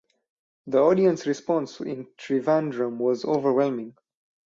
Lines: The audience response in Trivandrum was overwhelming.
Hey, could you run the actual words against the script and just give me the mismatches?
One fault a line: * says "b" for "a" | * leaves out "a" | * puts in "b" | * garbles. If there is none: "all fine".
all fine